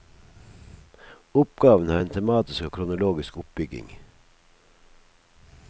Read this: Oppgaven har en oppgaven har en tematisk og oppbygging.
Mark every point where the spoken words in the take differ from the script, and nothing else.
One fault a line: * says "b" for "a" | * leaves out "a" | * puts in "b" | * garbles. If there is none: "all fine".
* leaves out "oppgaven har en"
* puts in "kronologisk"